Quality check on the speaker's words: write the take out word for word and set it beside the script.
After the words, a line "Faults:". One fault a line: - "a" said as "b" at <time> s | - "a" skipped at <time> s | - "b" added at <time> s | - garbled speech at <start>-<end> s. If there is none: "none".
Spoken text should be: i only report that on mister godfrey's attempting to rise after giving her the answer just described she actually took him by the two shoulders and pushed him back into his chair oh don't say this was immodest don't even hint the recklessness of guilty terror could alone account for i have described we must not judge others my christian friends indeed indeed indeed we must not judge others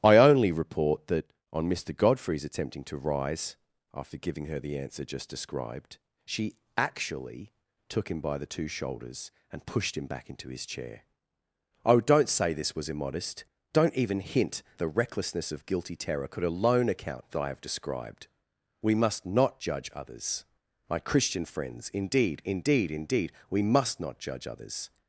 i only report that on mister godfrey's attempting to rise after giving her the answer just described she actually took him by the two shoulders and pushed him back into his chair oh don't say this was immodest don't even hint the recklessness of guilty terror could alone account for i have described we must not judge others my christian friends indeed indeed indeed we must not judge others
Faults:
none